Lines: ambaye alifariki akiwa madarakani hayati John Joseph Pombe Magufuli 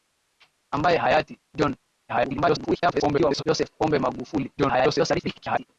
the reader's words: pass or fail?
fail